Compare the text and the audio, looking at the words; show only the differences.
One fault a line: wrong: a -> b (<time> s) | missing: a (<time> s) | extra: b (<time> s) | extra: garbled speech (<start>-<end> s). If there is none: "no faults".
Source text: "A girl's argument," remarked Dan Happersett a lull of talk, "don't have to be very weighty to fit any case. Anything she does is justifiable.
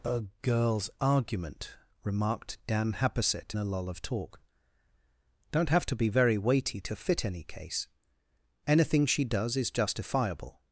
no faults